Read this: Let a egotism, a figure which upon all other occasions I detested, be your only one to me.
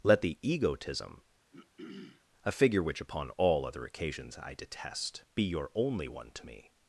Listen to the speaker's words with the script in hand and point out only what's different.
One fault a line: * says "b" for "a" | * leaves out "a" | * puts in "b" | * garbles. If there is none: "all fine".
* says "the" for "a"
* says "detest" for "detested"